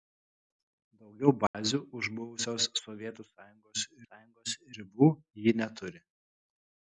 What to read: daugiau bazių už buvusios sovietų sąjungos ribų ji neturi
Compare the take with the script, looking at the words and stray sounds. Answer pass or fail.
fail